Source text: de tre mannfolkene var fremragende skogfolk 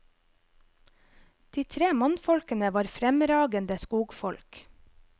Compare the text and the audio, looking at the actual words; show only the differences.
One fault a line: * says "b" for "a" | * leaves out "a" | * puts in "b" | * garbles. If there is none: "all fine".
all fine